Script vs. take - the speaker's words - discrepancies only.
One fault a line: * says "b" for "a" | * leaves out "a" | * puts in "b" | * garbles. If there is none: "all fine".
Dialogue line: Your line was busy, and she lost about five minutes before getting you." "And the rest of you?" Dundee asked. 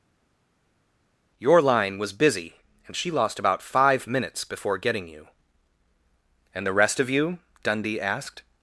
all fine